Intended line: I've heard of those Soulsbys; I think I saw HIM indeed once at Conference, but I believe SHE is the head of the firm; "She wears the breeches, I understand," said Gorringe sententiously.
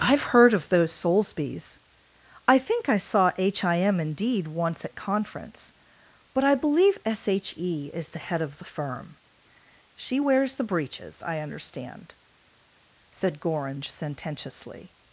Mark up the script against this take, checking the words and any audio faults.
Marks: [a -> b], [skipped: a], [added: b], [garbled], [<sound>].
I've heard of those Soulsbys; I think I saw HIM indeed once at Conference, but I believe SHE is the head of the firm; "She wears the breeches, I understand," said Gorringe sententiously.